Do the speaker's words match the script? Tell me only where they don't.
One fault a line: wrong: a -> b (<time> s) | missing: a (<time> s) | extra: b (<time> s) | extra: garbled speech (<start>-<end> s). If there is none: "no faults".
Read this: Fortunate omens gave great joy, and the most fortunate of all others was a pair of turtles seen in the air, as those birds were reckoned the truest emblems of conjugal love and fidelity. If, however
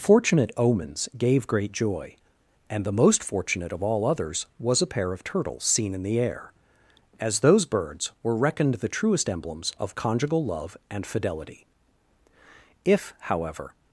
no faults